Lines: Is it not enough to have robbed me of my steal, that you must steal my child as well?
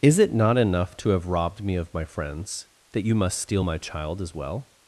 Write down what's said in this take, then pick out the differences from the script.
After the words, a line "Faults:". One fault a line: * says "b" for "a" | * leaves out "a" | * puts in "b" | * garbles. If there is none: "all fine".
Is it not enough to have robbed me of my friends, that you must steal my child as well?
Faults:
* says "friends" for "steal"